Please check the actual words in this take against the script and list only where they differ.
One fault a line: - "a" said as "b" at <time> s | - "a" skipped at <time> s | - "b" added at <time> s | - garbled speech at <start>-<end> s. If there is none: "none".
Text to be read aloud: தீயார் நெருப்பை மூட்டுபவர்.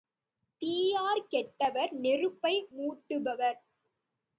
- "கெட்டவர்" added at 1.3 s